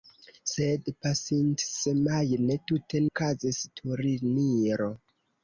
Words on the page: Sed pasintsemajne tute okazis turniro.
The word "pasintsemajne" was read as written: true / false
true